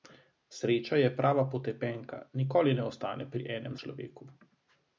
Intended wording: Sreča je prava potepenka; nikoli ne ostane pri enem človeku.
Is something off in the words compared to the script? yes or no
no